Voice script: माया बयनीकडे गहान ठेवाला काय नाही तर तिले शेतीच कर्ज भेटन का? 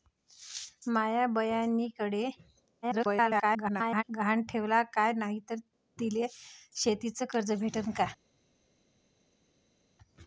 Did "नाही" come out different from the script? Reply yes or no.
no